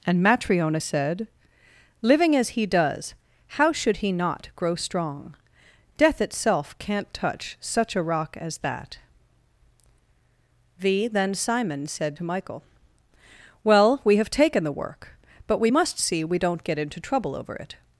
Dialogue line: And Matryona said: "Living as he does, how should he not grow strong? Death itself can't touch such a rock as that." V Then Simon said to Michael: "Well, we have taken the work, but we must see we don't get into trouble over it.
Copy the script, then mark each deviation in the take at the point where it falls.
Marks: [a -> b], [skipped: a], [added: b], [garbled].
And Matryona said: "Living as he does, how should he not grow strong? Death itself can't touch such a rock as that." V Then Simon said to Michael: "Well, we have taken the work, but we must see we don't get into trouble over it.